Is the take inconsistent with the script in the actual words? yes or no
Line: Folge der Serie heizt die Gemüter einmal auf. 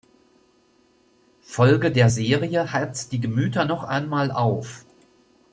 yes